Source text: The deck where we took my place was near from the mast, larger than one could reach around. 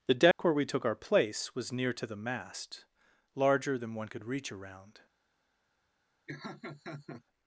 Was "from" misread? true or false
true